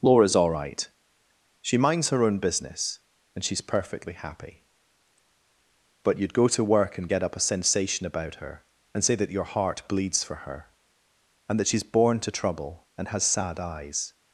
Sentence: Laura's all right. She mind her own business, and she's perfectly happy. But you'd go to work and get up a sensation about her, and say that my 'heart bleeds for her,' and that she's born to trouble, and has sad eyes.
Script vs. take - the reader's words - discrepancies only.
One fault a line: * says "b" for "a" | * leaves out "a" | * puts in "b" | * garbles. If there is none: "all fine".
* says "minds" for "mind"
* says "your" for "my"